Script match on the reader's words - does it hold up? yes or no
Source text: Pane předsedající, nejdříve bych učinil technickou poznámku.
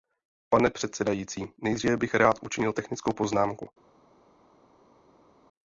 no